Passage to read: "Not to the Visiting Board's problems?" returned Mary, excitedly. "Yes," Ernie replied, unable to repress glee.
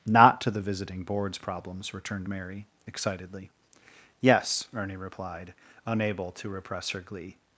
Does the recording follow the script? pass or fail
fail